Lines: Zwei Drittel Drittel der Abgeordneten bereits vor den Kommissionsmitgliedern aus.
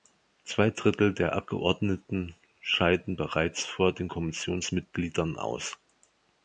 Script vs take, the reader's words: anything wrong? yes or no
yes